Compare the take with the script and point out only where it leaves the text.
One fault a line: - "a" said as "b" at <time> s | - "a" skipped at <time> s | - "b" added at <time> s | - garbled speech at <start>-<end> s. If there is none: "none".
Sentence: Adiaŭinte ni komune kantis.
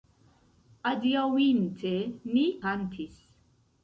- "komune" skipped at 2.5 s